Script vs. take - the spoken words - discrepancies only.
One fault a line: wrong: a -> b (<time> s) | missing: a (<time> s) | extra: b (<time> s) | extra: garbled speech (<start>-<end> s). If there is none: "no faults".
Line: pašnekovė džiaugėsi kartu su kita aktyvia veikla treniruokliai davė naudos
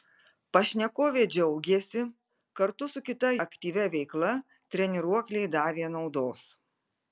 no faults